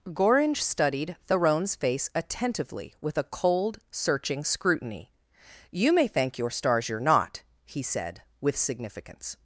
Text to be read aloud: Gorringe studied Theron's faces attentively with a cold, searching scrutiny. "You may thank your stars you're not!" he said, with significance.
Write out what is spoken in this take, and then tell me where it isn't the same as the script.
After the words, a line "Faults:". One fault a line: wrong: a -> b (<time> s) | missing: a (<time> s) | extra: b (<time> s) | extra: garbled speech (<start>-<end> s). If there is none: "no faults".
Gorringe studied Theron's face attentively with a cold, searching scrutiny. "You may thank your stars you're not!" he said, with significance.
Faults:
wrong: faces -> face (1.8 s)